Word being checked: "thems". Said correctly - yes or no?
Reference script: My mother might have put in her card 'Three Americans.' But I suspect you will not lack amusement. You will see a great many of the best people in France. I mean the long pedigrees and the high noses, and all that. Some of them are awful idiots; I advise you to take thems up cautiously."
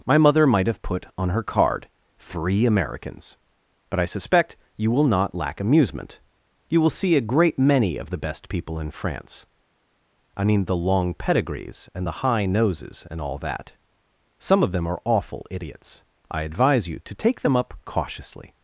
no